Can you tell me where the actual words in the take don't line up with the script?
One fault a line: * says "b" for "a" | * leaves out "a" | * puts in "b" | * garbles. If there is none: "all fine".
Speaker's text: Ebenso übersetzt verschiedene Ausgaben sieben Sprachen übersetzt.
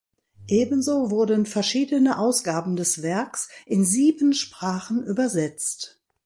* says "wurden" for "übersetzt"
* puts in "des Werks in"